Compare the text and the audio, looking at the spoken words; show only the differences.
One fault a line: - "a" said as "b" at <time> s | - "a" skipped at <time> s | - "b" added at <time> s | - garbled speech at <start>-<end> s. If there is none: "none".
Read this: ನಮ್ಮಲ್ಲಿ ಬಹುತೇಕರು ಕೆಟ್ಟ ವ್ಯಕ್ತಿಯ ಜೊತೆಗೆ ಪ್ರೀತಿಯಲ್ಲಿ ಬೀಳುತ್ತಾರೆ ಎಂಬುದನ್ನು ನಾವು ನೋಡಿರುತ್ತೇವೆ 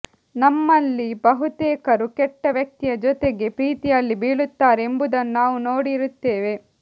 none